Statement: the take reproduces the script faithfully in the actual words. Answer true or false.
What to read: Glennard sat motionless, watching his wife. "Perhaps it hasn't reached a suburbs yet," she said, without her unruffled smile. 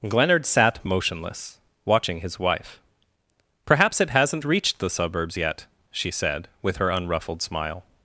false